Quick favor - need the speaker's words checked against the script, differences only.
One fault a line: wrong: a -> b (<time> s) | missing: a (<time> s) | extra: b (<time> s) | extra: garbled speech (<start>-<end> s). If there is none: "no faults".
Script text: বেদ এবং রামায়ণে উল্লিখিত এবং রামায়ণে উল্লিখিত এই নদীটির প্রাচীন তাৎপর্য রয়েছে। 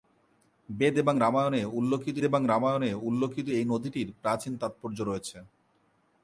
no faults